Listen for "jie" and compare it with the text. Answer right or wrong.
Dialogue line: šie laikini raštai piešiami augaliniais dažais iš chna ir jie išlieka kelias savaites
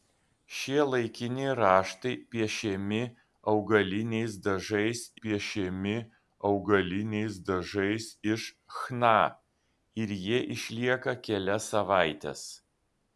right